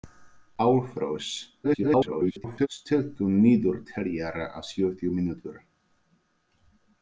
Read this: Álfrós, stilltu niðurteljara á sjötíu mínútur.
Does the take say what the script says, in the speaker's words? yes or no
no